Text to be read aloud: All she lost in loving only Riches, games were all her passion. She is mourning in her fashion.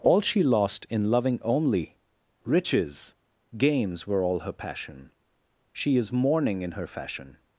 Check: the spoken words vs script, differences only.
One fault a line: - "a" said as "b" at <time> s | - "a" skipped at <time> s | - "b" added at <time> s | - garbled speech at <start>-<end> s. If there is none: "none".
none